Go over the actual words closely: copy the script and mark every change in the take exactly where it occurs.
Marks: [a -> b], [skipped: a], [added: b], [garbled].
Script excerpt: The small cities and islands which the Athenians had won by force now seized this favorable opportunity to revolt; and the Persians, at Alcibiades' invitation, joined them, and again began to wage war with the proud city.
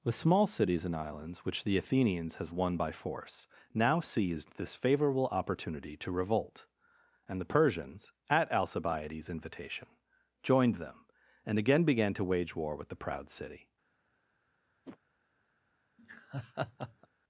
The small cities and islands which the Athenians [had -> has] won by force now seized this favorable opportunity to revolt; and the Persians, at Alcibiades' invitation, joined them, and again began to wage war with the proud city.